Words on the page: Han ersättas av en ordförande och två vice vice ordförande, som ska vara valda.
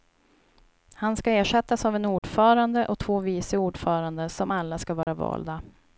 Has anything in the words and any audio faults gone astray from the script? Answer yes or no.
yes